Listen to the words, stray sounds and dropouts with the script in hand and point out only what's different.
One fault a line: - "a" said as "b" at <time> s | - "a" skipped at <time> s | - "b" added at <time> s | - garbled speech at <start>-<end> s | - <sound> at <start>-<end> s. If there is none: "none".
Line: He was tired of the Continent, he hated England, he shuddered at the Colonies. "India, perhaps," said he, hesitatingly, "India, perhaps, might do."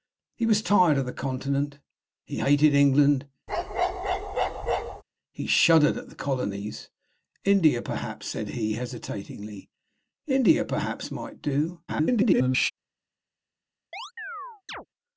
- bark at 3.5-5.0 s
- garbled speech at 11.9-12.7 s
- chirp at 13.9-14.9 s